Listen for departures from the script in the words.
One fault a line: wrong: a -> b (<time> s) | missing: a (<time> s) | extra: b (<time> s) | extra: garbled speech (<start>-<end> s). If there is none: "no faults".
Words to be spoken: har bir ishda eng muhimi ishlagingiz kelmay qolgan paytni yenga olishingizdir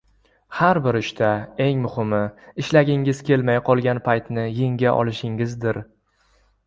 no faults